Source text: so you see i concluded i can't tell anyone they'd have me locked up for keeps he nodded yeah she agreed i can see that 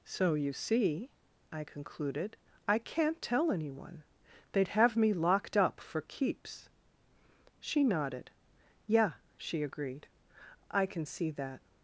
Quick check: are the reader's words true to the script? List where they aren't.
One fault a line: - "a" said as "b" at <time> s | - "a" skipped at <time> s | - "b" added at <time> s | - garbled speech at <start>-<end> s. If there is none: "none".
- "he" said as "she" at 7.6 s